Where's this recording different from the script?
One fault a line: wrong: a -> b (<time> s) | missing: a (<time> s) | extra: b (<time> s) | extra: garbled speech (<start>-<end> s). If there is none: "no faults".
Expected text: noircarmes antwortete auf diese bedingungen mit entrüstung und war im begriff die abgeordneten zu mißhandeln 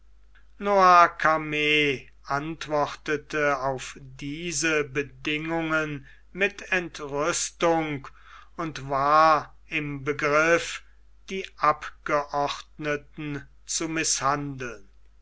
no faults